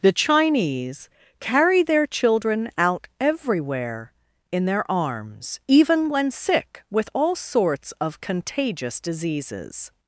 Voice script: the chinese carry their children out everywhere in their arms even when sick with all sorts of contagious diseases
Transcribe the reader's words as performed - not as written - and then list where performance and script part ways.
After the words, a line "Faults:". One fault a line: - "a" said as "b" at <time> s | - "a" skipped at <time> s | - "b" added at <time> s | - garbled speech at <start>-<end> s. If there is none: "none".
the chinese carry their children out everywhere in their arms even when sick with all sorts of contagious diseases
Faults:
none